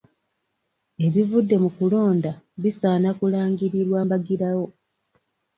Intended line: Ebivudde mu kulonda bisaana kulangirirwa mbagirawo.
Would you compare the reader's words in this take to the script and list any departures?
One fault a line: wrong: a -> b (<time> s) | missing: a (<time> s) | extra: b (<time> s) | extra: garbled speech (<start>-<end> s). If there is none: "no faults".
no faults